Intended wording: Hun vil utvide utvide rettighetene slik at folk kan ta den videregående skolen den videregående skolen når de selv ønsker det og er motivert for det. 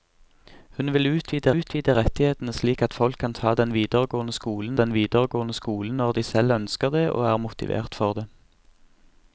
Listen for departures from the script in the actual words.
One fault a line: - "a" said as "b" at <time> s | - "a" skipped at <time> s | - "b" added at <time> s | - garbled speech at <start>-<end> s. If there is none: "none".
none